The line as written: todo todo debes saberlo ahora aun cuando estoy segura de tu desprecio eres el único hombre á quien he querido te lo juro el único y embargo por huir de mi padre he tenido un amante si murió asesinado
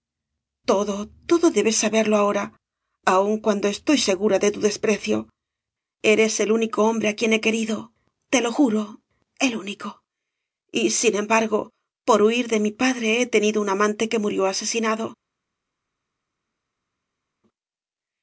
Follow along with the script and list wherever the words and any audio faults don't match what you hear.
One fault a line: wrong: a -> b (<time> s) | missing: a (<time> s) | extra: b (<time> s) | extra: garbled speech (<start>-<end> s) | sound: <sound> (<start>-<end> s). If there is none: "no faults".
extra: sin (11.0 s)
wrong: si -> que (14.1 s)